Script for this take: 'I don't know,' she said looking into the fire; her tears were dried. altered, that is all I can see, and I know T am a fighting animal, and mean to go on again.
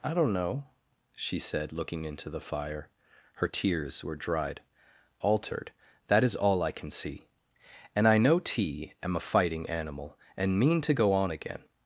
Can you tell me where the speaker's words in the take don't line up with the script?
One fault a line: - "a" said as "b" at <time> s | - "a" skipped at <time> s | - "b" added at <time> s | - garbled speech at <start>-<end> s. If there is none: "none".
none